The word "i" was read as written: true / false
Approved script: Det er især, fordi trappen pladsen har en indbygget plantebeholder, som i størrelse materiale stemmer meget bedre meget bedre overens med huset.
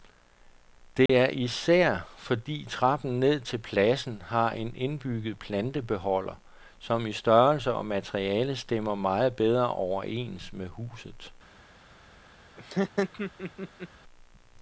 true